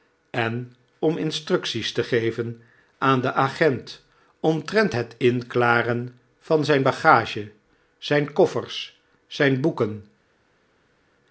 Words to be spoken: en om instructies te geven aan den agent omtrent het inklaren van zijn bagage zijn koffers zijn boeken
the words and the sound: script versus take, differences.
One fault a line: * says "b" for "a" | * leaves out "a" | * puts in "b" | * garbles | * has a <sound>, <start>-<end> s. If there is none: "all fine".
all fine